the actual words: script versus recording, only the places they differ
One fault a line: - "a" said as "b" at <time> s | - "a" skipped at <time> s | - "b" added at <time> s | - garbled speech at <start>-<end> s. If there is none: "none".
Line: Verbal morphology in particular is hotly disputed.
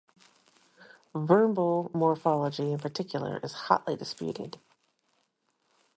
none